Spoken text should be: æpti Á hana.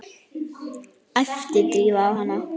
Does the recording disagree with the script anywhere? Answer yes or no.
yes